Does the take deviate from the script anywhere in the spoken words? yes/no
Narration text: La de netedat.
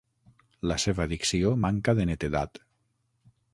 yes